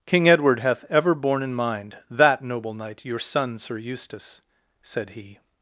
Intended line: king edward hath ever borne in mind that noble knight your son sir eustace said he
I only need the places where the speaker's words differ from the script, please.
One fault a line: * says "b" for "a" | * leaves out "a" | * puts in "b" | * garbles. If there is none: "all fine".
all fine